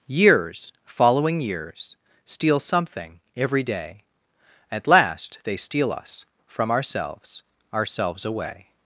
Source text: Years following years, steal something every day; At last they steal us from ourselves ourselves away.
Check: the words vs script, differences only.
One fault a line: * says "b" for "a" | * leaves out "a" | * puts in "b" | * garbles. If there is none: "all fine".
all fine